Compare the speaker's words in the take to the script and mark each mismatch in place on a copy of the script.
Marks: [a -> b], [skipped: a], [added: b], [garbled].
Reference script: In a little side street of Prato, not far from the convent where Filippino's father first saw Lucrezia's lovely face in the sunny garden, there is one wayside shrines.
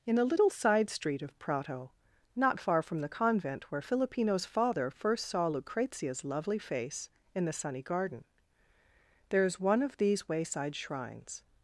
In a little side street of Prato, not far from the convent where Filippino's father first saw Lucrezia's lovely face in the sunny garden, there is one [added: of these] wayside shrines.